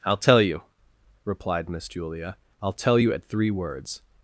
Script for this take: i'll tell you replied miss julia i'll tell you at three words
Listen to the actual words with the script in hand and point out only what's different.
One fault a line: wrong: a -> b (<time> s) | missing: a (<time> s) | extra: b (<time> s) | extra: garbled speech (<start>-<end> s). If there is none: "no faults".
no faults